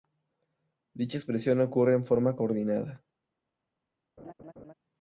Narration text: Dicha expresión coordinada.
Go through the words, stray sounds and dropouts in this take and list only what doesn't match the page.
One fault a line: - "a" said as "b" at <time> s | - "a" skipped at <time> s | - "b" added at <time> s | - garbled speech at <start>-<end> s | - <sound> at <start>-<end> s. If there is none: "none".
- "ocurre en forma" added at 1.6 s
- laugh at 4.2-4.7 s